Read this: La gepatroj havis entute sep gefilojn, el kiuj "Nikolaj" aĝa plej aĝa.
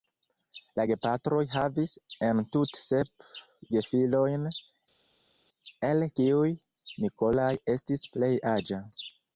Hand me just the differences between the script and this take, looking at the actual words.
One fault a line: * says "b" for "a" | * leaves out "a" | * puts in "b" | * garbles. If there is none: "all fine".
* says "estis" for "aĝa"